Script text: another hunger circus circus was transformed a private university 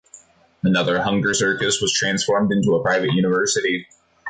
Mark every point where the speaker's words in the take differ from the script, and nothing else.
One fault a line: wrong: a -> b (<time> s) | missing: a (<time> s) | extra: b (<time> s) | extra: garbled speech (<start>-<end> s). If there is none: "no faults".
missing: circus (1.8 s)
extra: into (2.5 s)